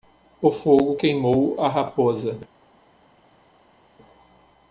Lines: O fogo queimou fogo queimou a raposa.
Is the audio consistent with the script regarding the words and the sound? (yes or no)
no